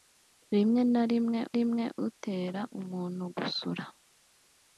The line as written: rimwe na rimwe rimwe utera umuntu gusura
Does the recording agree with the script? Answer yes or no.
yes